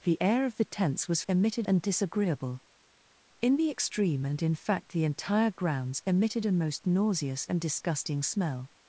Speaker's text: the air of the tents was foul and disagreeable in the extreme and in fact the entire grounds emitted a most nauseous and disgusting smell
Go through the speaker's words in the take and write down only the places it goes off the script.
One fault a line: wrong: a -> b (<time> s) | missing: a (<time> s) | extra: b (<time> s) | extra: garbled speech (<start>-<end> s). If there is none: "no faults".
wrong: foul -> emitted (1.3 s)